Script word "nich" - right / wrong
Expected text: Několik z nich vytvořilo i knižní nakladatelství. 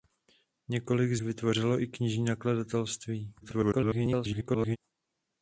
wrong